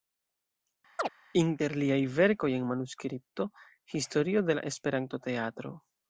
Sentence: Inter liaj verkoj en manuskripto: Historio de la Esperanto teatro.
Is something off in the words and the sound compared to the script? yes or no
yes